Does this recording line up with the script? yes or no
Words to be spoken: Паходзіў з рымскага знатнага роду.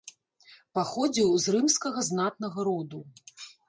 yes